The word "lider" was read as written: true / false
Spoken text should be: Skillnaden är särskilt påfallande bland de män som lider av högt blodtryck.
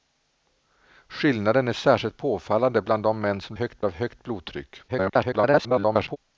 false